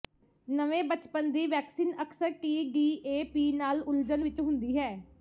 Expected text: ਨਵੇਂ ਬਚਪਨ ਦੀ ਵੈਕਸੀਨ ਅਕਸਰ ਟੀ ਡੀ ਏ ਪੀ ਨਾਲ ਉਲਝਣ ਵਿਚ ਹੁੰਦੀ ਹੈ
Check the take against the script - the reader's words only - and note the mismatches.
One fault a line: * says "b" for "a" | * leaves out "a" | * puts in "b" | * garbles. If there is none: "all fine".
all fine